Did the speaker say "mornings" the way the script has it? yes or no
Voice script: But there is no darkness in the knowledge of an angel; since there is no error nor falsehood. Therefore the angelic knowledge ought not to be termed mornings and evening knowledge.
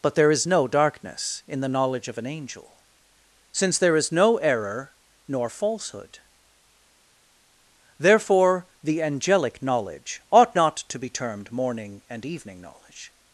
no